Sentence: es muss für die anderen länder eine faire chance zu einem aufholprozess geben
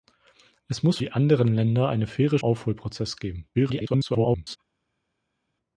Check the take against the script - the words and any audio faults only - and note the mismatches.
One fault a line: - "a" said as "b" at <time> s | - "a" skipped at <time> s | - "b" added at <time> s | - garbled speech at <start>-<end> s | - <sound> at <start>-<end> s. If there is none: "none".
- "für" skipped at 1.0 s
- "chance zu einem" skipped at 2.4 s
- garbled speech at 3.5-4.6 s